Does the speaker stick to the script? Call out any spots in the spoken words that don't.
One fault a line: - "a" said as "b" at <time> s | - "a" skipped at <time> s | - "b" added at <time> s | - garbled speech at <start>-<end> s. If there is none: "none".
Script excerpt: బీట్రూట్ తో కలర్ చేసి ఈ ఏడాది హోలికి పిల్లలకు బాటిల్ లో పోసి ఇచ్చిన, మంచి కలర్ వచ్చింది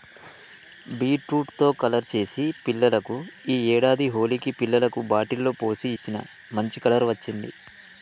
- "పిల్లలకు" added at 2.6 s